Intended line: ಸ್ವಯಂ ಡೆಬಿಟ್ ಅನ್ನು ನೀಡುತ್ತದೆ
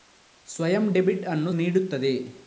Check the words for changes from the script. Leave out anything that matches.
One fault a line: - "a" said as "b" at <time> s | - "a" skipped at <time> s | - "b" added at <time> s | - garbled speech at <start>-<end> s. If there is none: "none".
none